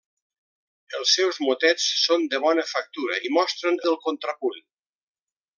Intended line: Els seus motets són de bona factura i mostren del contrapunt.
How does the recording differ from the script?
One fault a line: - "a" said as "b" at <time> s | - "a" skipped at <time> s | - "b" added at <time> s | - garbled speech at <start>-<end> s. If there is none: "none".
none